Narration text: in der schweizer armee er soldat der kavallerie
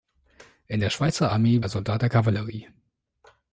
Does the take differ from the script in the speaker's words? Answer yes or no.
no